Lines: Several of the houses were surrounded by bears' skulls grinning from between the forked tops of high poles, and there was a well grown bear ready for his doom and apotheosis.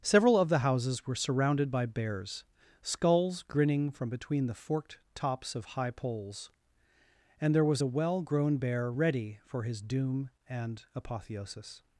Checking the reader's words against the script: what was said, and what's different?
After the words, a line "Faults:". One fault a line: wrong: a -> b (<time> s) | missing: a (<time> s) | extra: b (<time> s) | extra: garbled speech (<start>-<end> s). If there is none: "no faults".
Several of the houses were surrounded by bears' skulls grinning from between the forked tops of high poles, and there was a well grown bear ready for his doom and apotheosis.
Faults:
no faults